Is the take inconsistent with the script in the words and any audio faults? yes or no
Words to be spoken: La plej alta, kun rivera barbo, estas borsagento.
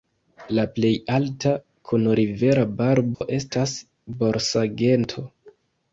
yes